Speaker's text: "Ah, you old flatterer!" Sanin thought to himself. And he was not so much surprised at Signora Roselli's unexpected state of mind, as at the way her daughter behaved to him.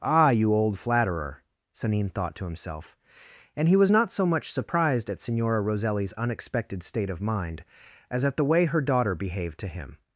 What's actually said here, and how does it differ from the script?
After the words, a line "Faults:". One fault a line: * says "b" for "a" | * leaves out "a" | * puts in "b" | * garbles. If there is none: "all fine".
"Ah, you old flatterer!" Sanin thought to himself. And he was not so much surprised at Signora Roselli's unexpected state of mind, as at the way her daughter behaved to him.
Faults:
all fine